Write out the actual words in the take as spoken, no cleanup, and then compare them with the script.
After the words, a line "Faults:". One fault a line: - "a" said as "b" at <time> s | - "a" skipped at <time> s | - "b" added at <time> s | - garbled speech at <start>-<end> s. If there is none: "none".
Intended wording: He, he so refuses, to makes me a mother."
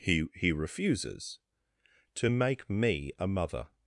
He, he refuses, to make me a mother."
Faults:
- "so" skipped at 0.5 s
- "makes" said as "make" at 2.3 s